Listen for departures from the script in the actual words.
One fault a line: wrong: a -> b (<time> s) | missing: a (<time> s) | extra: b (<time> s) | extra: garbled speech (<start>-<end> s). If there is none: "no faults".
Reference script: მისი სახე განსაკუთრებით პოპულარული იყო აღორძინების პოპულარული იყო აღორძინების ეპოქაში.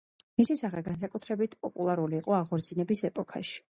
missing: პოპულარული იყო აღორძინების (3.1 s)